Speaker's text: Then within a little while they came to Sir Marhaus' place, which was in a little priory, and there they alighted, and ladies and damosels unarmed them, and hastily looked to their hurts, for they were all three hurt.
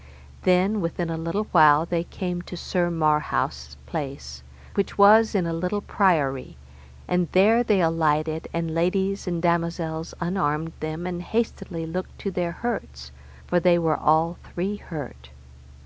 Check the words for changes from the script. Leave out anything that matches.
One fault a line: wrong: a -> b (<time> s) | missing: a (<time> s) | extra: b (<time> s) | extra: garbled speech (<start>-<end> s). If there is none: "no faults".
no faults